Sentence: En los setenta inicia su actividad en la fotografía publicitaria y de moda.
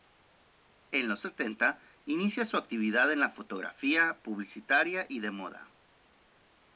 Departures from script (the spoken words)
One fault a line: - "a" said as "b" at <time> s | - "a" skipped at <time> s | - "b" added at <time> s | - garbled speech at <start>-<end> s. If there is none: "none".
none